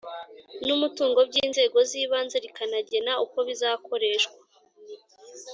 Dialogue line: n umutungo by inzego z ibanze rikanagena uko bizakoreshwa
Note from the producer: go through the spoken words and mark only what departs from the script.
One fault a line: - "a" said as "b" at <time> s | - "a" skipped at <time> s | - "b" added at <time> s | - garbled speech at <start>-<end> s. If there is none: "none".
none